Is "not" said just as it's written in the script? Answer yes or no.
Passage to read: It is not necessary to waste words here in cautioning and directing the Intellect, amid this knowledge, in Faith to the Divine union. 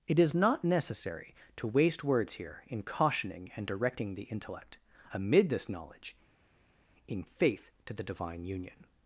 yes